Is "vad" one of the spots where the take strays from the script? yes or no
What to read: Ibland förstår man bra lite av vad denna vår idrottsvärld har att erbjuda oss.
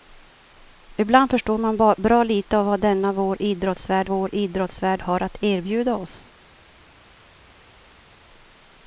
no